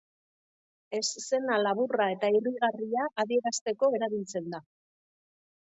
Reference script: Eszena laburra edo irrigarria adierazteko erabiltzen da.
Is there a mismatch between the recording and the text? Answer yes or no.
yes